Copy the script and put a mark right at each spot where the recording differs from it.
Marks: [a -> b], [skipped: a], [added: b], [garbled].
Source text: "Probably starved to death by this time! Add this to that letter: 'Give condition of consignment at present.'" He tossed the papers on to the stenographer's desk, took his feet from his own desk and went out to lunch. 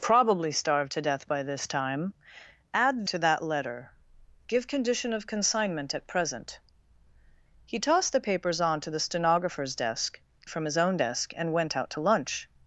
"Probably starved to death by this time! Add [skipped: this] to that letter: 'Give condition of consignment at present.'" He tossed the papers on to the stenographer's desk, [skipped: took his feet] from his own desk and went out to lunch.